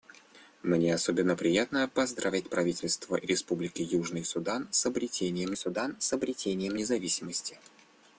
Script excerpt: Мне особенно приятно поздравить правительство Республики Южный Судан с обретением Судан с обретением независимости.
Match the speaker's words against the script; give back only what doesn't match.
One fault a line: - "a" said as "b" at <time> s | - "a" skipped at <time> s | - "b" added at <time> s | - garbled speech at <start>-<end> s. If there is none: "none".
none